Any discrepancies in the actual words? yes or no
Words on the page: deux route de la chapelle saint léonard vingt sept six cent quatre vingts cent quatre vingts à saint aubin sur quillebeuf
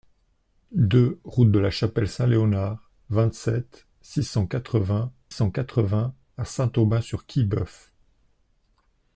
no